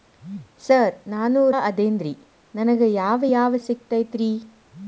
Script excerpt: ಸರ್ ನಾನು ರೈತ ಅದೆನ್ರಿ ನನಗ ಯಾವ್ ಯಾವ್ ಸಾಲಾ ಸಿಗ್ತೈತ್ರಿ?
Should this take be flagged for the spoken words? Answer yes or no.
yes